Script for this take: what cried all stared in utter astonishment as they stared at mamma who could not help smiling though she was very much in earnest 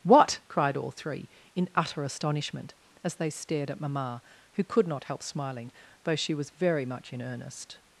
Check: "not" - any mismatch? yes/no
no